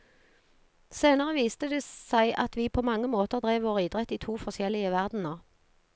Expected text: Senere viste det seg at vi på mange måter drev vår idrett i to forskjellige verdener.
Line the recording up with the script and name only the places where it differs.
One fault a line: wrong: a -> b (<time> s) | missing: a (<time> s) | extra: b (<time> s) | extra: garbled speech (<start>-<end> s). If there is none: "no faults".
no faults